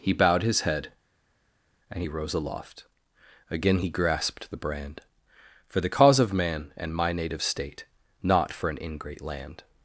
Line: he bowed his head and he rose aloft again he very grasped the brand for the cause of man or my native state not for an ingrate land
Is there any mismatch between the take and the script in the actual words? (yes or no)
yes